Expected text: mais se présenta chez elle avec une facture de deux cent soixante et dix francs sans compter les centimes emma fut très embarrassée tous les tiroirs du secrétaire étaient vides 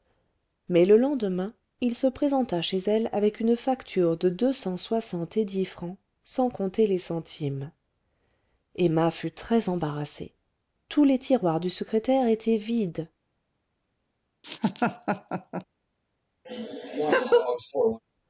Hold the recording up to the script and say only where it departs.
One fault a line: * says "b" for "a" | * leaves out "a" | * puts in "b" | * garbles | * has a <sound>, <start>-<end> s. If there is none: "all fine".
* puts in "le lendemain il"
* has a laugh, 14.4-15.6 s
* has a laugh, 16.4-18.0 s